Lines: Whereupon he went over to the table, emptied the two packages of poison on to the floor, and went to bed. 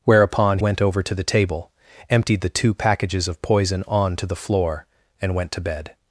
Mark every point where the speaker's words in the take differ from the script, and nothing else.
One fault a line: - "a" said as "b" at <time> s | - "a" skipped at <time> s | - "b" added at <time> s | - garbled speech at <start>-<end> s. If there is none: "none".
- "he" skipped at 0.6 s